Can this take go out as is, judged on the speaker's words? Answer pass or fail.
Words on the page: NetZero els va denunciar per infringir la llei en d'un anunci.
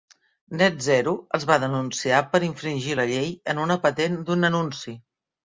fail